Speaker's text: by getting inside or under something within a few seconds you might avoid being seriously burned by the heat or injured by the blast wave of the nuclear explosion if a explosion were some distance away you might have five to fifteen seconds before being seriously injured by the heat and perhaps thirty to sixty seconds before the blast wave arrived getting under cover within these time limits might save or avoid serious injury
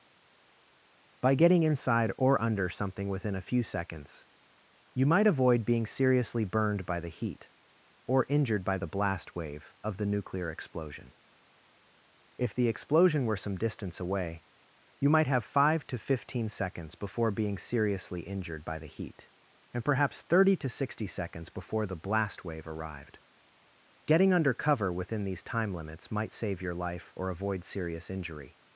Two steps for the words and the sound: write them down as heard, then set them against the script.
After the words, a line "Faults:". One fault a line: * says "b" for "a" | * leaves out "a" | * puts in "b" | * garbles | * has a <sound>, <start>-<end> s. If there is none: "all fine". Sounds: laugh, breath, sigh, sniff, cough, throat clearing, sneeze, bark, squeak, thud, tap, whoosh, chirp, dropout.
by getting inside or under something within a few seconds you might avoid being seriously burned by the heat or injured by the blast wave of the nuclear explosion if the explosion were some distance away you might have five to fifteen seconds before being seriously injured by the heat and perhaps thirty to sixty seconds before the blast wave arrived getting under cover within these time limits might save your life or avoid serious injury
Faults:
* says "the" for "a"
* puts in "your life"